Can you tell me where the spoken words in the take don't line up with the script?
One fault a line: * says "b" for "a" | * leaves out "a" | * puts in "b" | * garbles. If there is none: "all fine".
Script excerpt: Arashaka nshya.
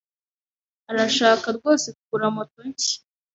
* puts in "rwose kugura moto"